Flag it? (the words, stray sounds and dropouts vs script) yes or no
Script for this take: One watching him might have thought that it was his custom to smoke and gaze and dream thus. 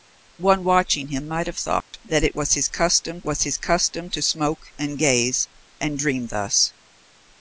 yes